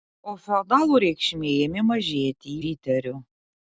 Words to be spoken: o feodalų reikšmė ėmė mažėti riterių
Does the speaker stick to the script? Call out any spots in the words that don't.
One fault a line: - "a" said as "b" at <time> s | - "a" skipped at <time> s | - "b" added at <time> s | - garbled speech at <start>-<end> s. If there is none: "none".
none